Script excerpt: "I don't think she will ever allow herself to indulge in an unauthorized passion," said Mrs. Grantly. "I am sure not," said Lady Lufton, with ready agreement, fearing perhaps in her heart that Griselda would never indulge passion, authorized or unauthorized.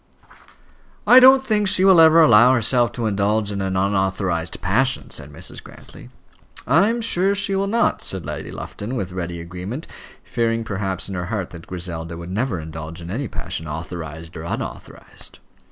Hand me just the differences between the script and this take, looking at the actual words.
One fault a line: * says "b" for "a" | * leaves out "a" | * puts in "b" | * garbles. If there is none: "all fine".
* puts in "she will"
* puts in "in any"